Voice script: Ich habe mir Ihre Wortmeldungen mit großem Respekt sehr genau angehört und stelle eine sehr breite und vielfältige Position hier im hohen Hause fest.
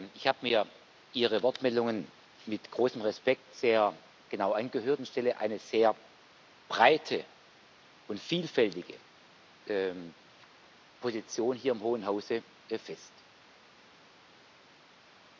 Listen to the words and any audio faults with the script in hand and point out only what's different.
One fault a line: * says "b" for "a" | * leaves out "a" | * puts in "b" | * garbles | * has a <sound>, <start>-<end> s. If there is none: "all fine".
all fine